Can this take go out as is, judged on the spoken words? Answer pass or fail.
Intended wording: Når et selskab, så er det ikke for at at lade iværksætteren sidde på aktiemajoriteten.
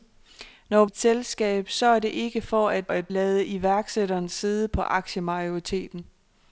pass